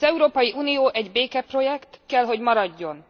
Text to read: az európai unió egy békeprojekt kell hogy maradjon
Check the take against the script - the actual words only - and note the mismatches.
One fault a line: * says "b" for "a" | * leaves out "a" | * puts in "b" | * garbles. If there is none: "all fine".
all fine